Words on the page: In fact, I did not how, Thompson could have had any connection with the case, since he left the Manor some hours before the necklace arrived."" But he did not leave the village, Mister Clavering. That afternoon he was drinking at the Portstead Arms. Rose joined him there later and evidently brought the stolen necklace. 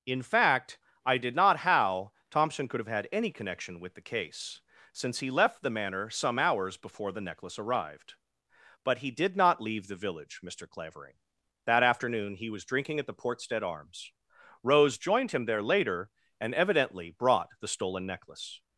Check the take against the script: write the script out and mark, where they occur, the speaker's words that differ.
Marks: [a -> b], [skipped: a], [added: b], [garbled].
In fact, I did not how, Thompson could have had any connection with the case, since he left the Manor some hours before the necklace arrived."" But he did not leave the village, Mister Clavering. That afternoon he was drinking at the Portstead Arms. Rose joined him there later and evidently brought the stolen necklace.